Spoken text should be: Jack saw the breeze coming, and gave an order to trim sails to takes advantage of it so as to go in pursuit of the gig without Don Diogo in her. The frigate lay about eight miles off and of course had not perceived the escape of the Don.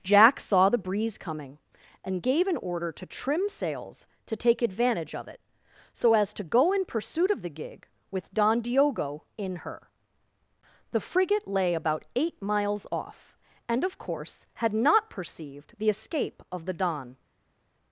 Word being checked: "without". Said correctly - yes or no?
no